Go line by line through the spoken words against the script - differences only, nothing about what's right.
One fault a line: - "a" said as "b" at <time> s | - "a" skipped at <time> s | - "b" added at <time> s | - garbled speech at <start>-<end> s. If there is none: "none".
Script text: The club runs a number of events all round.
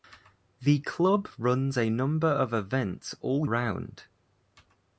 none